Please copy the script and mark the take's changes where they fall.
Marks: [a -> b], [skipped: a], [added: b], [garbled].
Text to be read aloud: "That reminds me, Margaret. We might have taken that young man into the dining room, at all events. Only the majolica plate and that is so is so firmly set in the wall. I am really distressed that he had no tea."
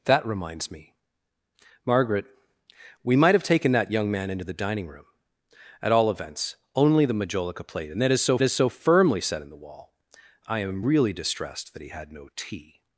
"That reminds me, Margaret. We might have taken that young man into the dining room, at all events. Only the majolica plate and that is so is so firmly set in the wall. I am really distressed that he had no tea."